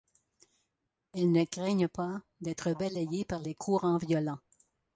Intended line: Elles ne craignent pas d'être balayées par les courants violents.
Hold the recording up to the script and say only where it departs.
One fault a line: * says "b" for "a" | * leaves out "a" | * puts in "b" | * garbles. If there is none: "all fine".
all fine